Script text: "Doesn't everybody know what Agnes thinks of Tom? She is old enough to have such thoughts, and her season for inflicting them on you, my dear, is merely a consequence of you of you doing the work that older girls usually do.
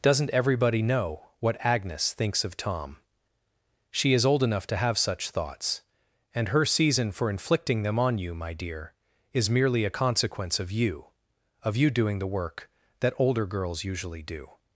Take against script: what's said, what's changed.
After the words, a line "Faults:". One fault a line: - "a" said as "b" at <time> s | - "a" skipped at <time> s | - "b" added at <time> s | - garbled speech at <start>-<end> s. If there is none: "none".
"Doesn't everybody know what Agnes thinks of Tom? She is old enough to have such thoughts, and her season for inflicting them on you, my dear, is merely a consequence of you of you doing the work that older girls usually do.
Faults:
none